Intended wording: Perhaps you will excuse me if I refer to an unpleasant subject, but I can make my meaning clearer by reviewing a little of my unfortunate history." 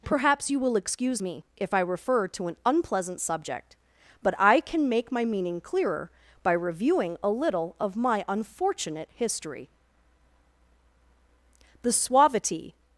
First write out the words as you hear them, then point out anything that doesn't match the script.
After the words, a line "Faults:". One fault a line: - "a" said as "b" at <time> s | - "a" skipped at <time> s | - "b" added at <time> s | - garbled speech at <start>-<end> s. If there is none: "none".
Perhaps you will excuse me if I refer to an unpleasant subject, but I can make my meaning clearer by reviewing a little of my unfortunate history." The suavity
Faults:
- "The suavity" added at 11.8 s